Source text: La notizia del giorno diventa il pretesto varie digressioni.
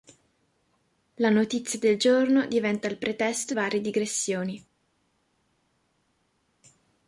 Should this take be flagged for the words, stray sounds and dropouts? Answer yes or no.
no